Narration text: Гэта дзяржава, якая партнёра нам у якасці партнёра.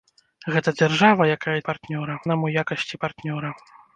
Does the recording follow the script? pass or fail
pass